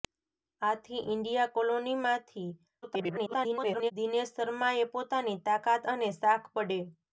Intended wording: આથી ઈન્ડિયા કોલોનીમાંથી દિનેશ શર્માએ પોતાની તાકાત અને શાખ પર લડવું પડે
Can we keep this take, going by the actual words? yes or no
no